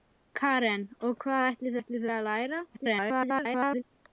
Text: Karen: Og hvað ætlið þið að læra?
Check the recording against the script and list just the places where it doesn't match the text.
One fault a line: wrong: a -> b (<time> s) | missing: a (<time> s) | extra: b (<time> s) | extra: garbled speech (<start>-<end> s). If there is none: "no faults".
extra: ætlið (1.8 s)
extra: garbled speech (2.7-3.8 s)